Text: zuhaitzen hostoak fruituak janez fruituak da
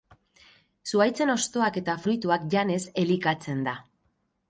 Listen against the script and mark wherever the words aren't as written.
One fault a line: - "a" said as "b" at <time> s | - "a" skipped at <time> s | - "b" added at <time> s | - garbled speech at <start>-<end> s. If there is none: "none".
- "eta" added at 1.8 s
- "fruituak" said as "elikatzen" at 3.0 s